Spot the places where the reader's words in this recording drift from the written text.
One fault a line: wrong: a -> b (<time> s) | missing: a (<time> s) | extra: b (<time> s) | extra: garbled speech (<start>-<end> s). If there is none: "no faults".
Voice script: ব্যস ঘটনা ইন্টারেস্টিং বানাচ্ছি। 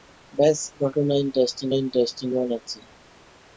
extra: ইন্টারেস্টিং (1.7 s)